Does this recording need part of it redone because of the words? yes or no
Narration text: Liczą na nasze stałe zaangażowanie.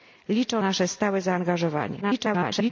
yes